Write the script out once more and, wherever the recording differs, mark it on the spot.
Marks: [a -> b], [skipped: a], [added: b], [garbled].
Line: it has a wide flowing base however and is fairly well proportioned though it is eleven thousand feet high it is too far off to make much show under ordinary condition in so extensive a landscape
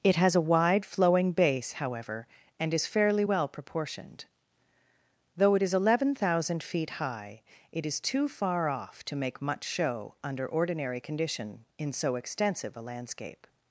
it has a wide flowing base however and is fairly well proportioned though it is eleven thousand feet high it is too far off to make much show under ordinary condition in so extensive a landscape